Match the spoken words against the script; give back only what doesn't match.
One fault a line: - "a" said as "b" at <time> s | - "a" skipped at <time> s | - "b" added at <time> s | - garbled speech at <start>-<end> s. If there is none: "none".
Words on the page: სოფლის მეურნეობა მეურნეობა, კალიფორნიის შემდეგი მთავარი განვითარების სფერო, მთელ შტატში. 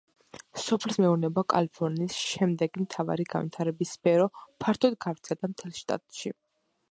- "მეურნეობა" skipped at 1.4 s
- "ფართოდ გავრცელდა" added at 4.7 s